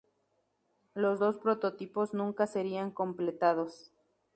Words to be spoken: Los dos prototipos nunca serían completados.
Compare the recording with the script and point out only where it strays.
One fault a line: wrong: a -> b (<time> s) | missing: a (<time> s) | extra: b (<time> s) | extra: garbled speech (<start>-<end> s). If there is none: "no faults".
no faults